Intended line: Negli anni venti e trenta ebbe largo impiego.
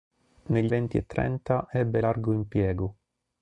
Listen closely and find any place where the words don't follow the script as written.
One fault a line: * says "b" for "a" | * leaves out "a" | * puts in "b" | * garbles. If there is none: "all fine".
* leaves out "anni"